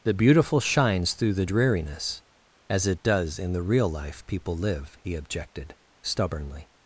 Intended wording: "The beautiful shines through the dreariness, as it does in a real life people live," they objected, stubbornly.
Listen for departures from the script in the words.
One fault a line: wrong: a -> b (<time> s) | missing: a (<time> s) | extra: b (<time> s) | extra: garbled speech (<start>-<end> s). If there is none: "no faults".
wrong: a -> the (3.5 s)
wrong: they -> he (5.0 s)